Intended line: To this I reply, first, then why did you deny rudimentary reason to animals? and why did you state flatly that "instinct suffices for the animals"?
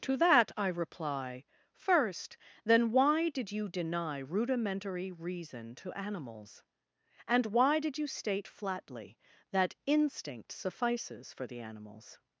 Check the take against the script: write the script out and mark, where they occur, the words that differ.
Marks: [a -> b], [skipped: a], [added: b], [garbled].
To [this -> that] I reply, first, then why did you deny rudimentary reason to animals? and why did you state flatly that "instinct suffices for the animals"?